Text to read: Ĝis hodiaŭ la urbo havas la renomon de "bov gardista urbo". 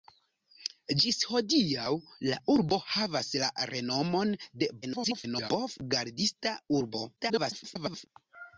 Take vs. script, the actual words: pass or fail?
fail